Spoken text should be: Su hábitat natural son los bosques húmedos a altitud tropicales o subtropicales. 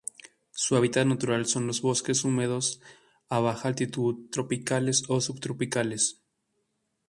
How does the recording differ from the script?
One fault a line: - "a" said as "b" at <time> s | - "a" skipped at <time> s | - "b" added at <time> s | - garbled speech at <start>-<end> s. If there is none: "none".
- "baja" added at 3.4 s